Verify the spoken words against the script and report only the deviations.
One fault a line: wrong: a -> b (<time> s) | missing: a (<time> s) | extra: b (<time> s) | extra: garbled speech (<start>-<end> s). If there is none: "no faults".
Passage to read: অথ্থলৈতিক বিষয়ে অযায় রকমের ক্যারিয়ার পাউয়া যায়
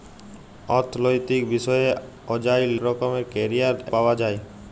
no faults